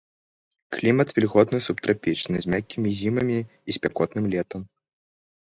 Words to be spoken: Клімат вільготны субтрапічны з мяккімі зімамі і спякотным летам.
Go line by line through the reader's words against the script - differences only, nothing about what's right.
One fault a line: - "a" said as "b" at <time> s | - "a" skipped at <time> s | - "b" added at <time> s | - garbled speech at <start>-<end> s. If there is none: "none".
none